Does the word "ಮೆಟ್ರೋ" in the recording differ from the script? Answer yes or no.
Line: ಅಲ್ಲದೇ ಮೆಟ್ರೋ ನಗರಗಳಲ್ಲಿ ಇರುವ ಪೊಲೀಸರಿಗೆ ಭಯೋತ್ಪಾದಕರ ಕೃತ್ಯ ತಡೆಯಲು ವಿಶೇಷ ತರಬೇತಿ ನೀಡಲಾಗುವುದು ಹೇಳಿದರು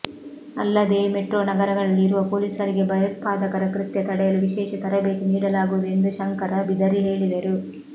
no